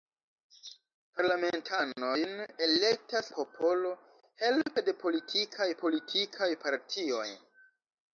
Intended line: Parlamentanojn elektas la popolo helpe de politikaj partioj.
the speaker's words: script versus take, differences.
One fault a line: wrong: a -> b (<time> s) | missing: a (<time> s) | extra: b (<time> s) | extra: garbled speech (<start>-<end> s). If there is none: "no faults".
missing: la (3.3 s)
extra: politikaj (5.8 s)